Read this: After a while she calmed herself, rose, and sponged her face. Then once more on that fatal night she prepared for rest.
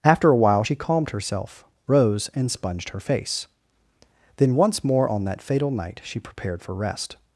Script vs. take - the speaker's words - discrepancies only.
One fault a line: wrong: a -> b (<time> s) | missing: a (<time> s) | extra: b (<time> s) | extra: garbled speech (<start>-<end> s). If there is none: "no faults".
no faults